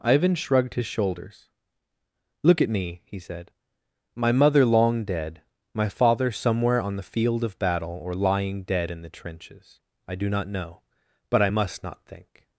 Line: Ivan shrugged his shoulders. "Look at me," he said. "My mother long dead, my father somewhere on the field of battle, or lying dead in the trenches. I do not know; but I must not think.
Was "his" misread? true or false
false